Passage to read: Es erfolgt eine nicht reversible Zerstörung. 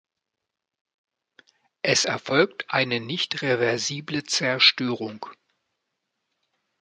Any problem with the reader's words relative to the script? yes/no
no